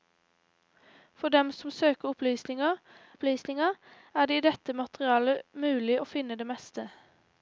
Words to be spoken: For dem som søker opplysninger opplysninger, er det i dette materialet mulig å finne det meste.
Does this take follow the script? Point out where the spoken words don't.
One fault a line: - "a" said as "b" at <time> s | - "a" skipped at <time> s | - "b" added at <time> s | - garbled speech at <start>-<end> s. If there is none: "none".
none